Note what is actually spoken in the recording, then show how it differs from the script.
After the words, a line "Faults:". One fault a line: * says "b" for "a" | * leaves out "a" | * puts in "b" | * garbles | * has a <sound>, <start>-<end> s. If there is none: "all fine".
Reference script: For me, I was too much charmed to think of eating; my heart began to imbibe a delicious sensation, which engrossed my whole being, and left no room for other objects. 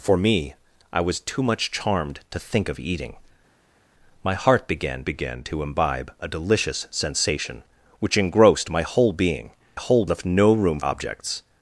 For me, I was too much charmed to think of eating; my heart began began to imbibe a delicious sensation, which engrossed my whole being, whole left no room objects.
Faults:
* puts in "began"
* says "whole" for "and"
* leaves out "for other"